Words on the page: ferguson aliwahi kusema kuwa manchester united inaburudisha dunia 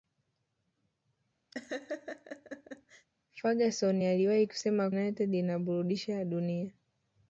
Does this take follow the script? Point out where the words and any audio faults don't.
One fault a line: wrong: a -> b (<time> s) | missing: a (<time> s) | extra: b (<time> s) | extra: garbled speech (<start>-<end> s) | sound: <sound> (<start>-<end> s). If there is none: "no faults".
sound: laugh (1.5-3.1 s)
missing: kuwa manchester (4.9 s)